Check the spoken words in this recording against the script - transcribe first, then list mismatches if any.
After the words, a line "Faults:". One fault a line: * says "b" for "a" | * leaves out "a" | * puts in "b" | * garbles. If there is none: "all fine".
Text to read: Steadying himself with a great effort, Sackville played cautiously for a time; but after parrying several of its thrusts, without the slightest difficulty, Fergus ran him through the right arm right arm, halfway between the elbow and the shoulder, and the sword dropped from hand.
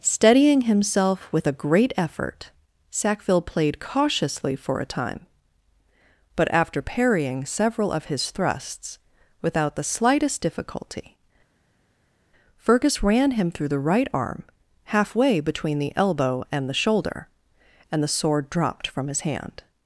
Steadying himself with a great effort, Sackville played cautiously for a time; but after parrying several of his thrusts, without the slightest difficulty, Fergus ran him through the right arm, halfway between the elbow and the shoulder, and the sword dropped from his hand.
Faults:
* says "his" for "its"
* leaves out "right arm"
* puts in "his"